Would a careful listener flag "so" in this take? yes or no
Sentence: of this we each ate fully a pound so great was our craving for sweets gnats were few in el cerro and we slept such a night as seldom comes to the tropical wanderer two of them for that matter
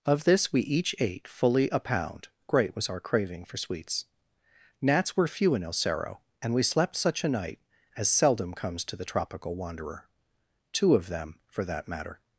yes